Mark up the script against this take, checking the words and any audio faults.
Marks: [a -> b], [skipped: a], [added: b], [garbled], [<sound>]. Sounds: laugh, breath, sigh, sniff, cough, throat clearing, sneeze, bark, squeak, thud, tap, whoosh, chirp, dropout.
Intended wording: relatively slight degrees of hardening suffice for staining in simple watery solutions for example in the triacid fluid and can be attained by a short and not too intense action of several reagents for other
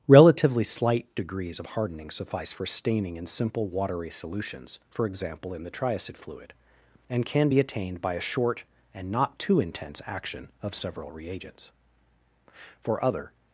relatively slight degrees of hardening suffice for staining in simple watery solutions for example in the triacid fluid and can be attained by a short and not too intense action of several reagents for other